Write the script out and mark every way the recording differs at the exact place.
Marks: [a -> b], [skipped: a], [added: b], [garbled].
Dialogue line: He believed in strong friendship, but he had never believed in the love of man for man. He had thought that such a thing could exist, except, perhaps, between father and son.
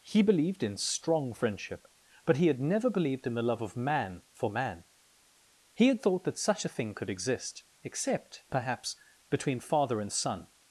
He believed in strong friendship, but he had never believed in the love of man for man. He had thought that such a thing could exist, except, perhaps, between father and son.